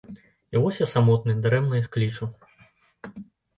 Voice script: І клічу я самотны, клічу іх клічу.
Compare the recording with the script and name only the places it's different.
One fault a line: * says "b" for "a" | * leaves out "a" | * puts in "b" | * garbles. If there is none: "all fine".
* says "вось" for "клічу"
* says "дарэмна" for "клічу"